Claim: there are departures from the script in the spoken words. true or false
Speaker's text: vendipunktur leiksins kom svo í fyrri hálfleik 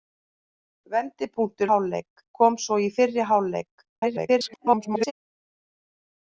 true